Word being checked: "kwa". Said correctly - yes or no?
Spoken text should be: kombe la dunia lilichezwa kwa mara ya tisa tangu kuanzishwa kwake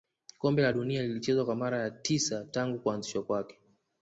yes